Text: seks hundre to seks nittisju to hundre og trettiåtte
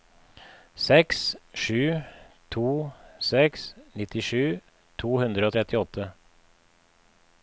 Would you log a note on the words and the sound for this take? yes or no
yes